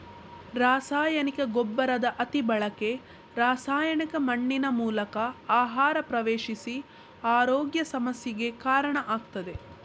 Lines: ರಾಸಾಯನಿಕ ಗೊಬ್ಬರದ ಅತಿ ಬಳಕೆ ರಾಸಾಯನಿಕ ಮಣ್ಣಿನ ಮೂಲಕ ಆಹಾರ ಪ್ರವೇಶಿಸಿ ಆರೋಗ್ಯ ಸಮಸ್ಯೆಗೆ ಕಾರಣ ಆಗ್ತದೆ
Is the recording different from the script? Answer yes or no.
no